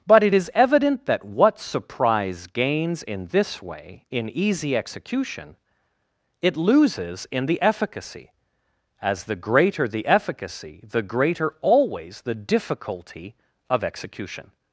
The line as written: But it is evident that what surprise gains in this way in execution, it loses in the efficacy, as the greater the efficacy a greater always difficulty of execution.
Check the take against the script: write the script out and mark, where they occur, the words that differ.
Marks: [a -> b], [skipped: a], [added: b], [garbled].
But it is evident that what surprise gains in this way in [added: easy] execution, it loses in the efficacy, as the greater the efficacy [a -> the] greater always [added: the] difficulty of execution.